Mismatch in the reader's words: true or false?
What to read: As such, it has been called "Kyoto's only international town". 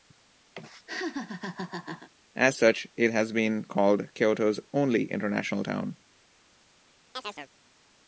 false